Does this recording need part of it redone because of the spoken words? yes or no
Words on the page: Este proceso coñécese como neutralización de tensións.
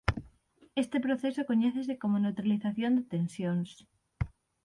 no